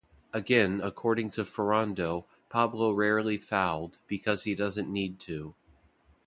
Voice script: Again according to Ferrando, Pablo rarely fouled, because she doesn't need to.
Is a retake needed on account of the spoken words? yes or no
yes